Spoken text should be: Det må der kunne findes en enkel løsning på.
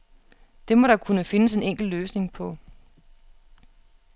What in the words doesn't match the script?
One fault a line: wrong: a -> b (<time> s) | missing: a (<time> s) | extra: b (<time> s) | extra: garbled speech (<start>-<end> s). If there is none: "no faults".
no faults